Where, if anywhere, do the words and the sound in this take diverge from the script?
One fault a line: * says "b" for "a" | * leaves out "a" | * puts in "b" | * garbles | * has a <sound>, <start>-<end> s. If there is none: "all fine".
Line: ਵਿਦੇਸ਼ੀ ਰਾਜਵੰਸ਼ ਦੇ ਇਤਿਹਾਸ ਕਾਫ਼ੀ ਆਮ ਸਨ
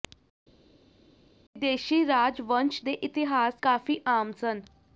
all fine